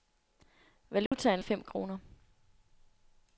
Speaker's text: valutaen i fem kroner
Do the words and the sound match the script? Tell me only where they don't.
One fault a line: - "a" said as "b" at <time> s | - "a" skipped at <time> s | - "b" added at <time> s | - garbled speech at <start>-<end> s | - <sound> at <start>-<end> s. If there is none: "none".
- dropout at 1.1-1.1 s